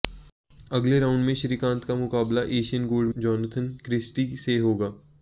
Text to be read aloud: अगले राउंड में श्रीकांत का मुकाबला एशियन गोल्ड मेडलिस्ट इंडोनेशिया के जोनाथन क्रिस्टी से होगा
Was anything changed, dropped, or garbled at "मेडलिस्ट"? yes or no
yes